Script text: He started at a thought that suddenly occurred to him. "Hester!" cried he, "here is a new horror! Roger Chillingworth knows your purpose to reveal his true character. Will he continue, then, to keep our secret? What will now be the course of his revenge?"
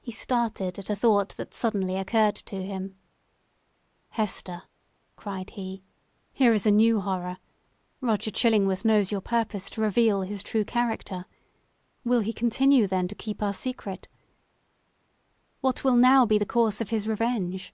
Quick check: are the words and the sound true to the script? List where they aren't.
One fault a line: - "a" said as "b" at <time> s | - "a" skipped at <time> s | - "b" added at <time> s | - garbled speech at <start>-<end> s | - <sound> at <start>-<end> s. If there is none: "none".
none